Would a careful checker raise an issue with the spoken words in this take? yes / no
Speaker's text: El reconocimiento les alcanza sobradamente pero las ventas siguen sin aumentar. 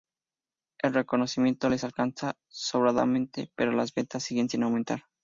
no